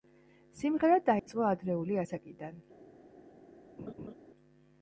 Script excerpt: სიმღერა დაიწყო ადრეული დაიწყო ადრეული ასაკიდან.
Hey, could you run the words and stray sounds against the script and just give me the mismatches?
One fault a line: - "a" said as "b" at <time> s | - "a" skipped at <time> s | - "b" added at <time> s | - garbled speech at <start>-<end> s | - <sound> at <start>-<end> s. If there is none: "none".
- dropout at 1.2-1.3 s
- "დაიწყო ადრეული" skipped at 2.0 s
- laugh at 3.8-4.1 s